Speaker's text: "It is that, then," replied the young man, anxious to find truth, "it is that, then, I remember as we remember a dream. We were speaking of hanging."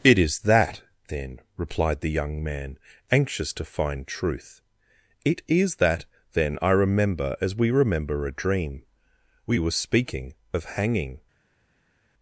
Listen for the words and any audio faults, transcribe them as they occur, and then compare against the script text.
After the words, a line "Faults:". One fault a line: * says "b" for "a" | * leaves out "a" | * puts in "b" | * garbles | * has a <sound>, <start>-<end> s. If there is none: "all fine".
"It is that, then," replied the young man, anxious to find truth, "it is that, then, I remember as we remember a dream. We were speaking of hanging."
Faults:
all fine